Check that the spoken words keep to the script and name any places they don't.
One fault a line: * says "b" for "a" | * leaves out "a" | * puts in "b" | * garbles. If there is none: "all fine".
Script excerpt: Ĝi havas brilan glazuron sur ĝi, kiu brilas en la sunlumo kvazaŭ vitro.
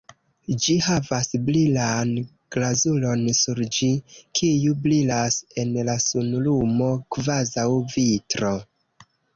all fine